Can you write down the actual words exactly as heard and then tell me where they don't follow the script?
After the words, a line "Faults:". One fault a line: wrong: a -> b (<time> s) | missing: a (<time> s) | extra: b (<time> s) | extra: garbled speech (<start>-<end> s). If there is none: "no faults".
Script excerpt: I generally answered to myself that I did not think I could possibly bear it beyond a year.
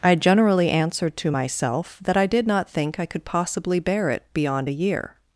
I generally answered to myself that I did not think I could possibly bear it beyond a year.
Faults:
no faults